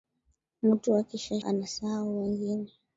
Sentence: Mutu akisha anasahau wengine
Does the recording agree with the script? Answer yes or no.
yes